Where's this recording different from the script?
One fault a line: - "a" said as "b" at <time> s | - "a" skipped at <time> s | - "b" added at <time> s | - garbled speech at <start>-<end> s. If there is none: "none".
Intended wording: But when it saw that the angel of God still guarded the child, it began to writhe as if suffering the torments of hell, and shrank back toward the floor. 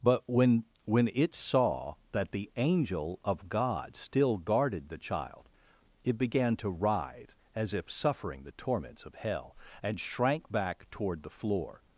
- "when" added at 0.8 s